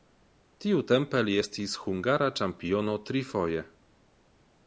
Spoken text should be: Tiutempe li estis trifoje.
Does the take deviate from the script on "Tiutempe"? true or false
false